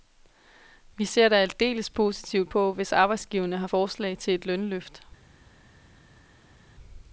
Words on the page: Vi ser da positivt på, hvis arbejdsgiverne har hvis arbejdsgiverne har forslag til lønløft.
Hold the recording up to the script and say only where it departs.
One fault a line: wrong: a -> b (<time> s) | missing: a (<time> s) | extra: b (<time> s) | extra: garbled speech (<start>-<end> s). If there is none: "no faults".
extra: aldeles (1.4 s)
missing: hvis arbejdsgiverne har (3.7 s)
extra: et (4.3 s)